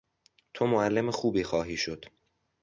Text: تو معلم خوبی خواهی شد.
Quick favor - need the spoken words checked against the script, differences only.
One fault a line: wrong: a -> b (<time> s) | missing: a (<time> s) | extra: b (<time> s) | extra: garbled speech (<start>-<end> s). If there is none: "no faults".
no faults